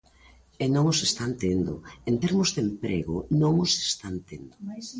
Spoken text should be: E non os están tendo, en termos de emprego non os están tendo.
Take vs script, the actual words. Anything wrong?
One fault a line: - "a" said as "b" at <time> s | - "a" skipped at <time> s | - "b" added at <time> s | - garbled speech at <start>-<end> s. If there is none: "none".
none